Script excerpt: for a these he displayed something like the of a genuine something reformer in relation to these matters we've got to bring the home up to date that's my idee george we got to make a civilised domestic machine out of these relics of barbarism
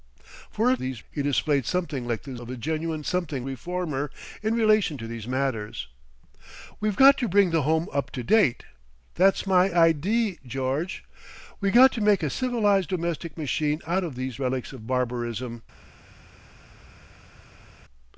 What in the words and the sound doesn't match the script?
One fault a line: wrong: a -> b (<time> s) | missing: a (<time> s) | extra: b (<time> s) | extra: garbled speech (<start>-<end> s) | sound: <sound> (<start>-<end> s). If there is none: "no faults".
no faults